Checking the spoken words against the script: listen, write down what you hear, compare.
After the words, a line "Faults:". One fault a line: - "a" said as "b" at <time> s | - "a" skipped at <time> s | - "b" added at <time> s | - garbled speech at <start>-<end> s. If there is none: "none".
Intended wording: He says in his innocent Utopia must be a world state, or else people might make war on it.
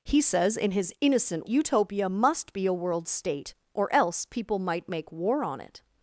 He says in his innocent Utopia must be a world state, or else people might make war on it.
Faults:
none